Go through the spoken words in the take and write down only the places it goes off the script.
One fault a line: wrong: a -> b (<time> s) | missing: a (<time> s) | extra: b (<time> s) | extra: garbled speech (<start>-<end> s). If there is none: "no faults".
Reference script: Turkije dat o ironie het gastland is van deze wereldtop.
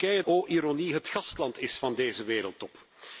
missing: dat (0.2 s)